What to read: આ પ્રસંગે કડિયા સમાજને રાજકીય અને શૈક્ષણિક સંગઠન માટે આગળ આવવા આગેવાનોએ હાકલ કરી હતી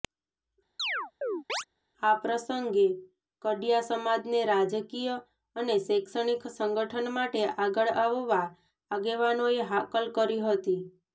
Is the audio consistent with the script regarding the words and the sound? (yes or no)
no